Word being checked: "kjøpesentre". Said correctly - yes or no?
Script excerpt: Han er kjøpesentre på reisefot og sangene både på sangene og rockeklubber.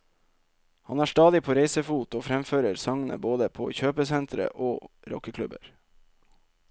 no